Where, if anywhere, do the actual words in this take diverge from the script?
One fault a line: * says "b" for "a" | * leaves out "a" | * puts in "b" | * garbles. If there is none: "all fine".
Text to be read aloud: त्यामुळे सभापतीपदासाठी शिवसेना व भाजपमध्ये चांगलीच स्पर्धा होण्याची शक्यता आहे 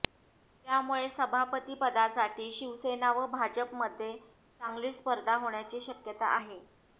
all fine